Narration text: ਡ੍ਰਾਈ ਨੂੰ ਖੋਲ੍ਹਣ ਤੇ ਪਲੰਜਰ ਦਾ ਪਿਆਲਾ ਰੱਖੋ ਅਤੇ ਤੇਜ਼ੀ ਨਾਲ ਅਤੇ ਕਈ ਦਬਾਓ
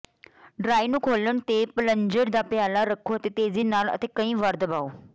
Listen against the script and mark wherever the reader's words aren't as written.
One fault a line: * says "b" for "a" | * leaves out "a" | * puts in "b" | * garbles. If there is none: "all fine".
* puts in "ਵਾਰ"